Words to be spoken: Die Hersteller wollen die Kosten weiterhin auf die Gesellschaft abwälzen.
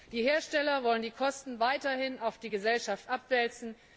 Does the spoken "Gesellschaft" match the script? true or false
true